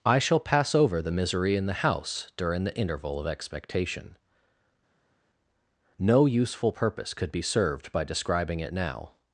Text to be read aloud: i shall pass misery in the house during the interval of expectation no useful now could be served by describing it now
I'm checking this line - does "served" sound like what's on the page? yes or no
yes